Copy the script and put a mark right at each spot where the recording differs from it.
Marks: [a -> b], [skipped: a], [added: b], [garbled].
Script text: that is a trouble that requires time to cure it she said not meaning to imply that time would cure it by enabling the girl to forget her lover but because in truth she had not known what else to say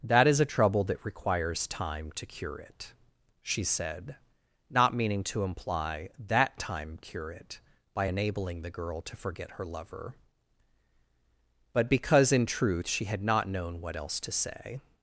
that is a trouble that requires time to cure it she said not meaning to imply that time [skipped: would] cure it by enabling the girl to forget her lover but because in truth she had not known what else to say